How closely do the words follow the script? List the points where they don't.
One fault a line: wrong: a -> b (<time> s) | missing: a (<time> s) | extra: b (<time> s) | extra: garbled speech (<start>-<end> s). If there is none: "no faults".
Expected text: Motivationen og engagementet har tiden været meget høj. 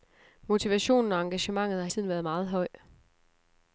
no faults